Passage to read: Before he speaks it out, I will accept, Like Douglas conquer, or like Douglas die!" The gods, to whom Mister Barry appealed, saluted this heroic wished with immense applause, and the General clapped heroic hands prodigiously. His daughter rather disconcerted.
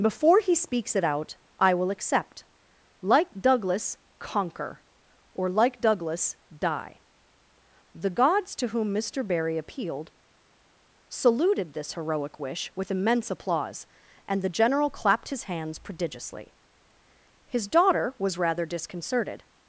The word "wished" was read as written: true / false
false